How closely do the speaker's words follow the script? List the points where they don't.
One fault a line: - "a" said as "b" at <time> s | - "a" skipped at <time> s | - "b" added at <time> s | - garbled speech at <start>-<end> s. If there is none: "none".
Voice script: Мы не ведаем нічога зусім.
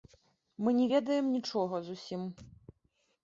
none